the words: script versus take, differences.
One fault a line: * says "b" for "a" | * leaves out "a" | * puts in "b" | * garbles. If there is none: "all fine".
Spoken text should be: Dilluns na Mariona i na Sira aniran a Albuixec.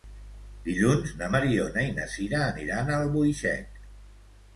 all fine